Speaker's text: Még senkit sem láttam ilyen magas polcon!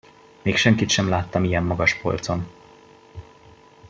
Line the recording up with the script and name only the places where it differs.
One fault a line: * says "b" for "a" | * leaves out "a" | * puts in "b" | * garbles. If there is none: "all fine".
all fine